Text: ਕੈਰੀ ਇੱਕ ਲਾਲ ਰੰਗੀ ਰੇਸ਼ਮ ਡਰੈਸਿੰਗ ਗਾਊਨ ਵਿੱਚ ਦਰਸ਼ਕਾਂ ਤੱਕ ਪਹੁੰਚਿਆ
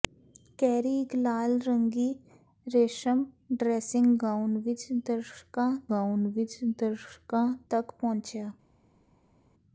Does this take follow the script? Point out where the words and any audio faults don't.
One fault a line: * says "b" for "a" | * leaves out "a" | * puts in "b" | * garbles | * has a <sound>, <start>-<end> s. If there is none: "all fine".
* puts in "ਗਾਊਨ ਵਿੱਚ ਦਰਸ਼ਕਾਂ"